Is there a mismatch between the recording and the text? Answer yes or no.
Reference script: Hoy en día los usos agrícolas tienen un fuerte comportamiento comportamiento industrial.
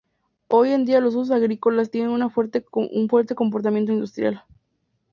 yes